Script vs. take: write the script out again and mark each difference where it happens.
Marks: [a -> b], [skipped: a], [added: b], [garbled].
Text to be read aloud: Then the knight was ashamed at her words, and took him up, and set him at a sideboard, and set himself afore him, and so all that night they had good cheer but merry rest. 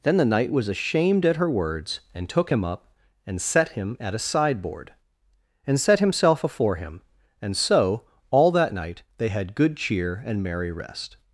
Then the knight was ashamed at her words, and took him up, and set him at a sideboard, and set himself afore him, and so all that night they had good cheer [but -> and] merry rest.